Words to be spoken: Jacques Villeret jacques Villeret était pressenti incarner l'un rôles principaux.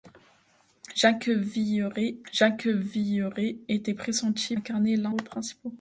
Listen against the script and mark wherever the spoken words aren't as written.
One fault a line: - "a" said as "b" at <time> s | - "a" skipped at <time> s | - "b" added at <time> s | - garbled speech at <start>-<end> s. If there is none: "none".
none